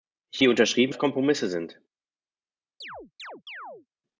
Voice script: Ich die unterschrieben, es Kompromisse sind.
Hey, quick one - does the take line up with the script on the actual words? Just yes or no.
yes